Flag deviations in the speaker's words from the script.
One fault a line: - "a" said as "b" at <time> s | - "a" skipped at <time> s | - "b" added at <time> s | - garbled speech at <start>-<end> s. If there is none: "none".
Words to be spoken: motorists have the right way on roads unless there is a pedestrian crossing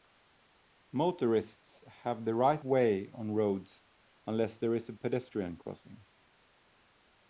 none